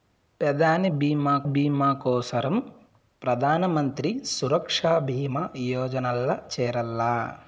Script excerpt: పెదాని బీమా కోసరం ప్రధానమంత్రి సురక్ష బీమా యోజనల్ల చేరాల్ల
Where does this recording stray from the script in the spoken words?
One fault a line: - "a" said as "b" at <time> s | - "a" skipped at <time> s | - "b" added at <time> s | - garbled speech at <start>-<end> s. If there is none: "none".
- "బీమా" added at 1.4 s